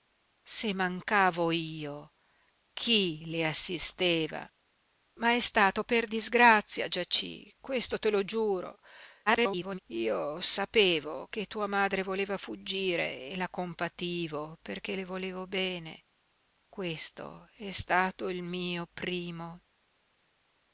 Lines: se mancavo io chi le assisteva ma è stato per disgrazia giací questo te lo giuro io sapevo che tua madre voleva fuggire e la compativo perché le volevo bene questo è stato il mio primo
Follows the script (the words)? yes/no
no